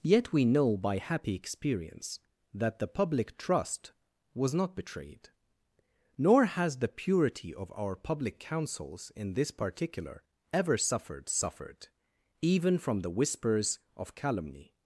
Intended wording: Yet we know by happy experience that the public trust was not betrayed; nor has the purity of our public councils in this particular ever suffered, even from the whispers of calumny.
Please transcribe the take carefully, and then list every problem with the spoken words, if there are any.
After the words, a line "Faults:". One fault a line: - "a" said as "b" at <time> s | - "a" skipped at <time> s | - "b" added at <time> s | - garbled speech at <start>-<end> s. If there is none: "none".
Yet we know by happy experience that the public trust was not betrayed; nor has the purity of our public councils in this particular ever suffered suffered, even from the whispers of calumny.
Faults:
- "suffered" added at 11.3 s